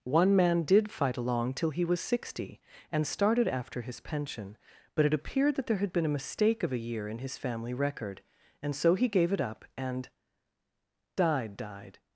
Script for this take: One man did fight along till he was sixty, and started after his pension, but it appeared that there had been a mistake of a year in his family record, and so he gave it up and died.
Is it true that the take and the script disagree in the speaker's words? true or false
true